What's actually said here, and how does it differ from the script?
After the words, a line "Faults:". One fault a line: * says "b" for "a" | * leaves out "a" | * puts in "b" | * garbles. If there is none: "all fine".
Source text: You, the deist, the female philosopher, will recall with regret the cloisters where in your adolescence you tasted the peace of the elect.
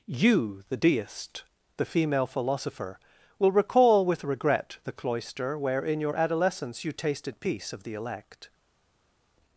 You, the deist, the female philosopher, will recall with regret the cloister where in your adolescence you tasted peace of the elect.
Faults:
* says "cloister" for "cloisters"
* leaves out "the"